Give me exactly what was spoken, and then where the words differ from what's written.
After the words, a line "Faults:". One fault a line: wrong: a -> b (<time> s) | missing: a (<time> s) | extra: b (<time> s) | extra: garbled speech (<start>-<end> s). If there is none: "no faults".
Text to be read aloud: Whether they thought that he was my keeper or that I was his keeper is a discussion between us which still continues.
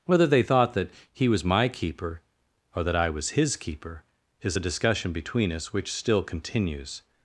Whether they thought that he was my keeper or that I was his keeper is a discussion between us which still continues.
Faults:
no faults